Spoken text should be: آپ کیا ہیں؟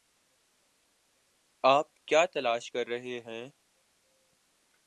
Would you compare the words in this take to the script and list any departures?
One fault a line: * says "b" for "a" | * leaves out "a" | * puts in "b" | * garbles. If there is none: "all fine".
* puts in "تلاش کر رہے"